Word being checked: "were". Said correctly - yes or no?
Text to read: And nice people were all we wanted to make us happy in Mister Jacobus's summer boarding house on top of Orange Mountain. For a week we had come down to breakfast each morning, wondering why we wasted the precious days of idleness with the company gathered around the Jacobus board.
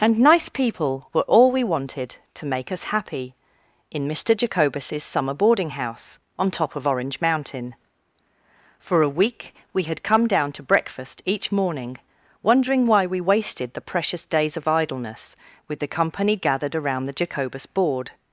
yes